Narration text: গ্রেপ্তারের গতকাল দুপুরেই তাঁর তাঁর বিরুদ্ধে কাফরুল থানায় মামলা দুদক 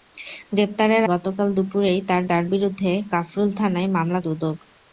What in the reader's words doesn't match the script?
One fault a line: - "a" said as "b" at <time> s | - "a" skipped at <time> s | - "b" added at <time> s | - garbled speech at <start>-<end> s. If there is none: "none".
none